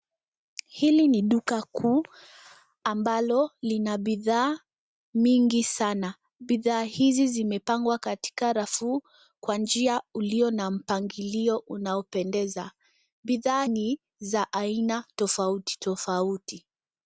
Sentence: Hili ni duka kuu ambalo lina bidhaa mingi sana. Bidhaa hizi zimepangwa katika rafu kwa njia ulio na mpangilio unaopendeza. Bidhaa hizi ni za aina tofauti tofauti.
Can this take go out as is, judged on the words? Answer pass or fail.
fail